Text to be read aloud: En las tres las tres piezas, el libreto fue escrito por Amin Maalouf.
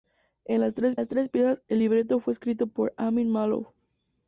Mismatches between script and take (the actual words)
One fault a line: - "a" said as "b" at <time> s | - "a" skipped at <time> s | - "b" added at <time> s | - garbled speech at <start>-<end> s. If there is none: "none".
none